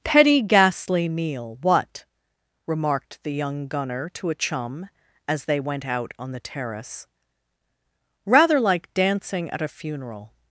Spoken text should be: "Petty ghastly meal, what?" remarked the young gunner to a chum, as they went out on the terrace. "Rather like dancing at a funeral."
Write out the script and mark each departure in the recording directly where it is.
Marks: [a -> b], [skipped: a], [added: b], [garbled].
"Petty ghastly meal, what?" remarked the young gunner to a chum, as they went out on the terrace. "Rather like dancing at a funeral."